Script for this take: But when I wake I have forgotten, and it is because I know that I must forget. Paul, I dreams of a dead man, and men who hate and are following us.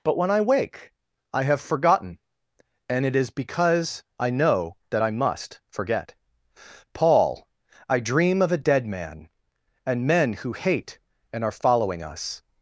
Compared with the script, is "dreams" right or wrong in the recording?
wrong